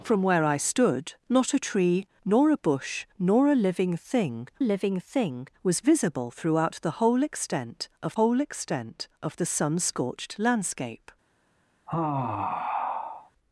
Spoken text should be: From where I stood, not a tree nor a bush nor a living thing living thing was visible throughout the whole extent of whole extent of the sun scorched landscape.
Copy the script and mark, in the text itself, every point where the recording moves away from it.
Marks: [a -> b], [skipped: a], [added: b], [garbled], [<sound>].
From where I stood, not a tree nor a bush nor a living thing living thing was visible throughout the whole extent of whole extent of the sun scorched landscape. [sigh]